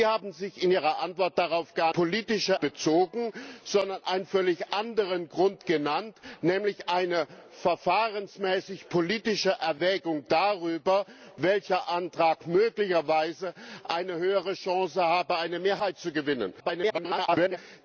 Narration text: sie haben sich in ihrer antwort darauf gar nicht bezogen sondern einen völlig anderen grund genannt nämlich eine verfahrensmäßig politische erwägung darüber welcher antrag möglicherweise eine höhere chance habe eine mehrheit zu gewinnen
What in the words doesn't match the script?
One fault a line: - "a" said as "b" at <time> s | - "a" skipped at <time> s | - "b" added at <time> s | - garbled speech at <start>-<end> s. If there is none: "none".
- "nicht" said as "politische" at 1.9 s
- garbled speech at 16.6-17.6 s